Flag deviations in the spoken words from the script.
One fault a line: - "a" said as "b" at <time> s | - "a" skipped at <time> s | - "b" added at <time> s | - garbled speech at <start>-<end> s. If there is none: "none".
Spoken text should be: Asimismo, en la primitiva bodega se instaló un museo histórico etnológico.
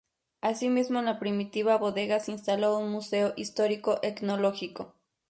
none